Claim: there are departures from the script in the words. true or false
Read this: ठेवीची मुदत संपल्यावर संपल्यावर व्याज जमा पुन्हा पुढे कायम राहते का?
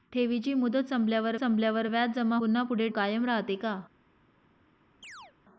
false